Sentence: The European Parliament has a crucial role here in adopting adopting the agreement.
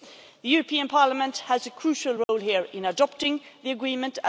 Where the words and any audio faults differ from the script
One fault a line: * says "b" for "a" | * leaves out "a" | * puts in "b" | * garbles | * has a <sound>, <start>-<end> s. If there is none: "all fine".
* has a dropout, 2.2-2.3 s
* leaves out "adopting"